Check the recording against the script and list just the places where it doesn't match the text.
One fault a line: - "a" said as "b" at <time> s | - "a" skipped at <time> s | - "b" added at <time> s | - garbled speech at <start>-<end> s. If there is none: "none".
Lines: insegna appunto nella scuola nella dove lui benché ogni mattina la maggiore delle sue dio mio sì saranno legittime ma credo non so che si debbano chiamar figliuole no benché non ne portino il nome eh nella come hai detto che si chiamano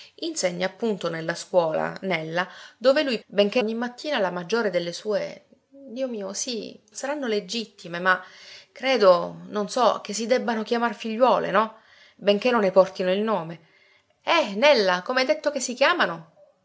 none